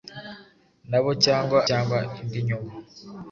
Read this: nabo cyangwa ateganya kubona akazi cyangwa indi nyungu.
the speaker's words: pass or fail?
fail